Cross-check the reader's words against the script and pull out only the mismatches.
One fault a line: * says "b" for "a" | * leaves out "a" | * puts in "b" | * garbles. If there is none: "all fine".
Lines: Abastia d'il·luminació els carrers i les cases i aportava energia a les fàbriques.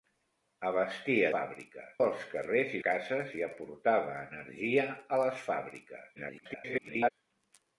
* says "fàbriques" for "d'il·luminació"
* leaves out "les"
* garbles